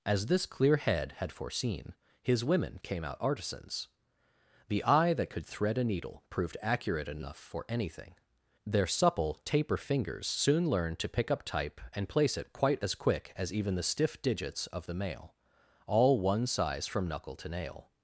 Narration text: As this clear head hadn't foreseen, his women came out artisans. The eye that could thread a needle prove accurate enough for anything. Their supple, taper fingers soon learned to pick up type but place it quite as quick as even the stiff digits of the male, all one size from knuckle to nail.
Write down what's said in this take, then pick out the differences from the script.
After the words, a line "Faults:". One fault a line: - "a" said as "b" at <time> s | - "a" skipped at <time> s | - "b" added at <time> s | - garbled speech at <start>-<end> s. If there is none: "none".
As this clear head had foreseen, his women came out artisans. The eye that could thread a needle proved accurate enough for anything. Their supple, taper fingers soon learned to pick up type and place it quite as quick as even the stiff digits of the male, all one size from knuckle to nail.
Faults:
- "hadn't" said as "had" at 1.2 s
- "prove" said as "proved" at 6.3 s
- "but" said as "and" at 11.9 s